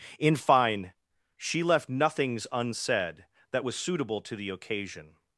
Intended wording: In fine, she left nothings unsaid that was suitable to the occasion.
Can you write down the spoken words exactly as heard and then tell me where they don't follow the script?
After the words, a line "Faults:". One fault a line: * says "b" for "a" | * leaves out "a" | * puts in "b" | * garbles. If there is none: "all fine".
In fine, she left nothings unsaid that was suitable to the occasion.
Faults:
all fine